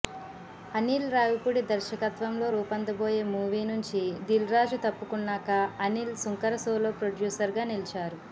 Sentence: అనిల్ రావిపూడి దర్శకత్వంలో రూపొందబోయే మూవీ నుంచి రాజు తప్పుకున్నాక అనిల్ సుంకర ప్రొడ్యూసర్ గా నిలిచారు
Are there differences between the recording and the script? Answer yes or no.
yes